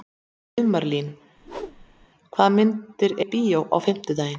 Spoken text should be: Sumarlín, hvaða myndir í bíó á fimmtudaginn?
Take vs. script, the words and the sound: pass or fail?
fail